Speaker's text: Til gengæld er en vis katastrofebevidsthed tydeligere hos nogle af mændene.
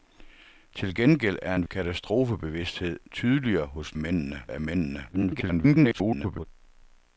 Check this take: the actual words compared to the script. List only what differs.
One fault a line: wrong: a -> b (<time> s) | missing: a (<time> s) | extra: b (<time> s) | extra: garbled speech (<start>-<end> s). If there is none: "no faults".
missing: vis (1.7 s)
wrong: nogle -> mændene (4.0 s)
extra: garbled speech (5.1-6.5 s)